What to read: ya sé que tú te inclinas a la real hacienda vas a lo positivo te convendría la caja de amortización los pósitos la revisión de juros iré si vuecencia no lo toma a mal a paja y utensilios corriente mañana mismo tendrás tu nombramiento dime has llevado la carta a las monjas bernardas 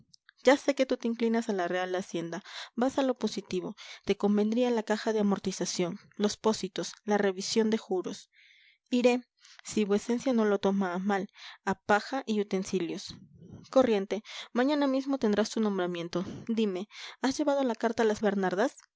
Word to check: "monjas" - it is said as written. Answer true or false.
false